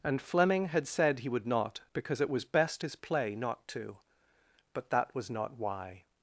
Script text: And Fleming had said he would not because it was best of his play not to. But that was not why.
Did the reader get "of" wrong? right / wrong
wrong